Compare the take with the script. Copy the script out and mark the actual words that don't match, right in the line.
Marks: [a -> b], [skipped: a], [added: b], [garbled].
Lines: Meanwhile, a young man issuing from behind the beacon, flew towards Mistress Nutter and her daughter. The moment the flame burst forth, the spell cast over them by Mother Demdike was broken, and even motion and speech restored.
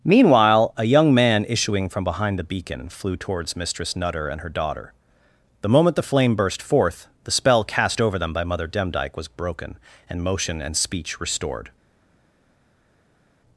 Meanwhile, a young man issuing from behind the beacon, flew towards Mistress Nutter and her daughter. The moment the flame burst forth, the spell cast over them by Mother Demdike was broken, and [skipped: even] motion and speech restored.